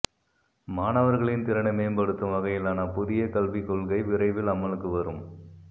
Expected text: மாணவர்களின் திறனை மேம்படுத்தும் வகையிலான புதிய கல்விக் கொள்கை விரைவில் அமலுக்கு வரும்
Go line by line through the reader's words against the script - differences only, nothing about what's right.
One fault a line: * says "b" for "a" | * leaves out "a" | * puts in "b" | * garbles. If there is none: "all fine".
all fine